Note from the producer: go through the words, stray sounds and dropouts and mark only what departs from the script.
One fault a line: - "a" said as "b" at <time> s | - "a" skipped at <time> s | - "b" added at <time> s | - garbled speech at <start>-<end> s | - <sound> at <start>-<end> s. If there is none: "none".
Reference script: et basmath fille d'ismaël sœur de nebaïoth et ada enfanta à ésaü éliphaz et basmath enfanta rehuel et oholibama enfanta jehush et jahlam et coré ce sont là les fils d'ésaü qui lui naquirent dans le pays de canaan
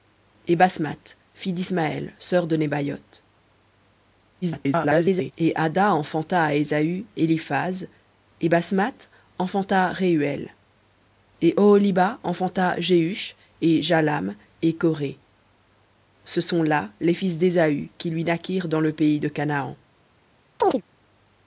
- garbled speech at 4.4-5.3 s
- chirp at 20.6-20.8 s